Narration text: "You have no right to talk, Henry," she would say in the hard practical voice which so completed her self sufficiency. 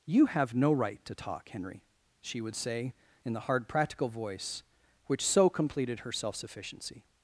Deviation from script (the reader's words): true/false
false